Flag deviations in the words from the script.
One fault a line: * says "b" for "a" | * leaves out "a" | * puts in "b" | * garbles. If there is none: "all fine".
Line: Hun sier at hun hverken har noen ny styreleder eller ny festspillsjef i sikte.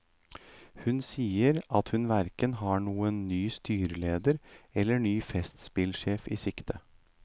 all fine